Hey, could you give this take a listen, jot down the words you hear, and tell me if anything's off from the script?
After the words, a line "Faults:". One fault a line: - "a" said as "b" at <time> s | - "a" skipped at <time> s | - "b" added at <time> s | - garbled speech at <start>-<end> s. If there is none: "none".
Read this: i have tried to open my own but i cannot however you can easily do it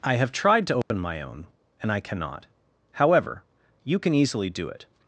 i have tried to open my own and i cannot however you can easily do it
Faults:
- "but" said as "and" at 1.8 s